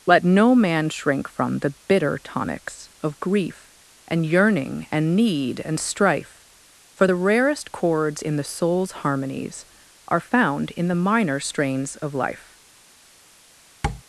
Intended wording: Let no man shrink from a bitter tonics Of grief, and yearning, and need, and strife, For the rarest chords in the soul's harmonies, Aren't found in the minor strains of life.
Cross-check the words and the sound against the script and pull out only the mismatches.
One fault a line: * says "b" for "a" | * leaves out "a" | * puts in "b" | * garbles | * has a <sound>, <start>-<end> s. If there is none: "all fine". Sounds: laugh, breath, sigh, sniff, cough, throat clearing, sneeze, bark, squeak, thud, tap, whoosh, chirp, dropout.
* says "the" for "a"
* says "Are" for "Aren't"
* has a tap, 13.8-14.0 s